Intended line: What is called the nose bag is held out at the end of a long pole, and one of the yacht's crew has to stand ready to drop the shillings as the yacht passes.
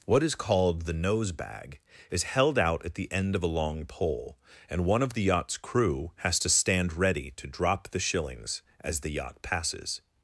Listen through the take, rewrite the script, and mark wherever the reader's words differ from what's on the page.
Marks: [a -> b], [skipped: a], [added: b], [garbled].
What is called the nose bag is held out at the end of a long pole, and one of the yacht's crew has to stand ready to drop the shillings as the yacht passes.